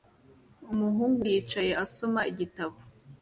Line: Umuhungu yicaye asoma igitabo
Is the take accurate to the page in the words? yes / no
yes